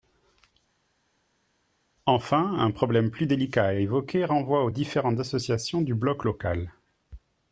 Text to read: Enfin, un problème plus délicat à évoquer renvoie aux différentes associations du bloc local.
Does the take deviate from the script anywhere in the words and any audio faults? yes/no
no